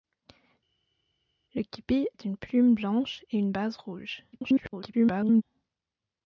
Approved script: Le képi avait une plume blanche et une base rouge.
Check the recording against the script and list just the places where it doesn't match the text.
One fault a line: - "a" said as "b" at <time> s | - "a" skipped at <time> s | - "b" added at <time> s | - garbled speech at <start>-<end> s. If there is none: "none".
- "avait" skipped at 2.1 s
- garbled speech at 4.3-5.4 s